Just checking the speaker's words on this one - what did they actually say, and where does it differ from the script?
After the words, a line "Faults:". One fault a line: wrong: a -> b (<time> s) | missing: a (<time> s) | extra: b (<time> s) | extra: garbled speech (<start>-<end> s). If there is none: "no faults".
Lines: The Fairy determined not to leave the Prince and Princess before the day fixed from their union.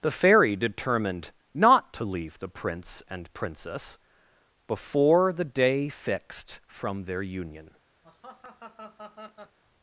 The Fairy determined not to leave the Prince and Princess before the day fixed from their union.
Faults:
no faults